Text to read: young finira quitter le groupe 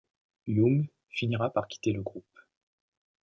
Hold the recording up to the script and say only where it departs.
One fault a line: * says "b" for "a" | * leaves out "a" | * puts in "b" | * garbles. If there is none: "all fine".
* puts in "par"